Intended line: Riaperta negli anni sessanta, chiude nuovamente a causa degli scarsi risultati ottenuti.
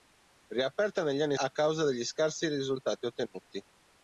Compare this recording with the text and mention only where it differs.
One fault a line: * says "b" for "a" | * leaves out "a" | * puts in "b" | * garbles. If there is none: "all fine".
* leaves out "sessanta chiude nuovamente"